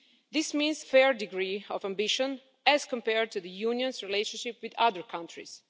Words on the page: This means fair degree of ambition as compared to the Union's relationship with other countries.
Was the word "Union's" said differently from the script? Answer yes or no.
no